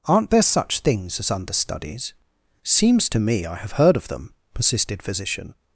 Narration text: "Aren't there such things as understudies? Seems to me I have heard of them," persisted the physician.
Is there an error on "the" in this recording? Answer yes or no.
yes